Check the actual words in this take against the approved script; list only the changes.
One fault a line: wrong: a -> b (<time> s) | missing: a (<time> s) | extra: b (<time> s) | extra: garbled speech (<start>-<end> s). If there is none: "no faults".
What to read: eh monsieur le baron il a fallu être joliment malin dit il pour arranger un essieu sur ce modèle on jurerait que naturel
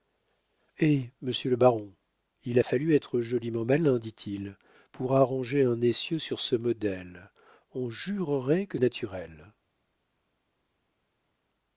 no faults